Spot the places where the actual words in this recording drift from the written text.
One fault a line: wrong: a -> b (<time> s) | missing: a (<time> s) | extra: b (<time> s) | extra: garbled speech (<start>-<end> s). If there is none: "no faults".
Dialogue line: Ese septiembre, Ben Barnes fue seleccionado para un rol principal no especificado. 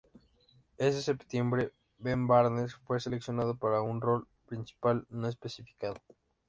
no faults